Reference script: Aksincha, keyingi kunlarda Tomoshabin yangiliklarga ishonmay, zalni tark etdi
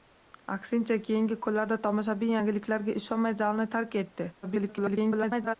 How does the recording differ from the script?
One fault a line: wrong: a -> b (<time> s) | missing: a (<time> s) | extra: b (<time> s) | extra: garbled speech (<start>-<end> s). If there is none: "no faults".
extra: garbled speech (4.4-5.5 s)